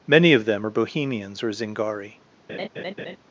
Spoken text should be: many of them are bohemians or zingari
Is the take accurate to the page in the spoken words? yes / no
yes